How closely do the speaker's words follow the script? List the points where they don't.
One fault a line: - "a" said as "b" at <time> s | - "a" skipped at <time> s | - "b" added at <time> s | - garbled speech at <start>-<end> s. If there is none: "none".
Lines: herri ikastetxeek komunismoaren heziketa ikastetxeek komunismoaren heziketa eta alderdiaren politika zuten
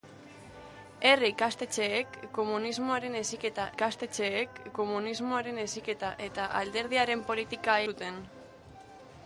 none